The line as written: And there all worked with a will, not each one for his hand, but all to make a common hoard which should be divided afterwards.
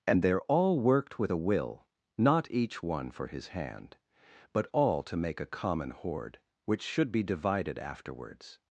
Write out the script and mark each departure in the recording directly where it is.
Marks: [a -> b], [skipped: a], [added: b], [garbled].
And there all worked with a will, not each one for his hand, but all to make a common hoard which should be divided afterwards.